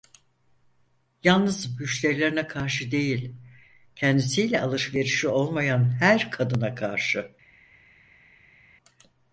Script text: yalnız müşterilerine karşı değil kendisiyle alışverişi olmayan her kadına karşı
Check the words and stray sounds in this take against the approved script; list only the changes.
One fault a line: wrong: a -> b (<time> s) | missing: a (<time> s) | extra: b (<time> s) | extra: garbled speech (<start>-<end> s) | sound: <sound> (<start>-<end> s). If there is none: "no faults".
no faults